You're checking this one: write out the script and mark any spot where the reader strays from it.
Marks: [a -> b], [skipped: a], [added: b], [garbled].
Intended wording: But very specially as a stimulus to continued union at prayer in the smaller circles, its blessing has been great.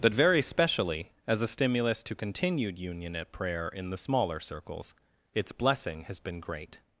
But very specially as a stimulus to continued union at prayer in the smaller circles, its blessing has been great.